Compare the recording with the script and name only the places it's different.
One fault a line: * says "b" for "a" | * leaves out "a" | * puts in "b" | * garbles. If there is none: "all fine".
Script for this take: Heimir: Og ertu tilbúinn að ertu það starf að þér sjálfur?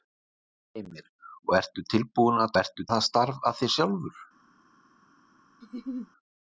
all fine